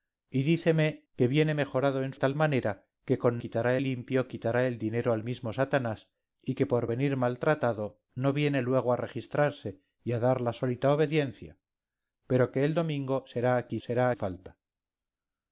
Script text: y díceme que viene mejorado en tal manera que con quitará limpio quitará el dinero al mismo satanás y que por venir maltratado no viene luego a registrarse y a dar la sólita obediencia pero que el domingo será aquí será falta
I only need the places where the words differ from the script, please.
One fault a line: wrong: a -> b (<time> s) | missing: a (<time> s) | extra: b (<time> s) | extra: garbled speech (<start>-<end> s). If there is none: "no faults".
no faults